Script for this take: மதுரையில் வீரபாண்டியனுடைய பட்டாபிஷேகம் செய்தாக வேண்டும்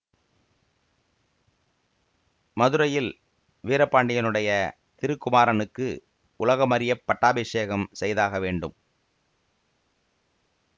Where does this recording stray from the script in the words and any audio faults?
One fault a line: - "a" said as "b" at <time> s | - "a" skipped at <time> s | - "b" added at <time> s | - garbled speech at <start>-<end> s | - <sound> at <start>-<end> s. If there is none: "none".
- "திருக்குமாரனுக்கு உலகமறியப்" added at 5.0 s